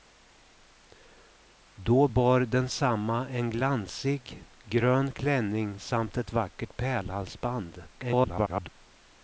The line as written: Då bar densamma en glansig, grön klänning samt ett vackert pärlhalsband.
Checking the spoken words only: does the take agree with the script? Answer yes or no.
no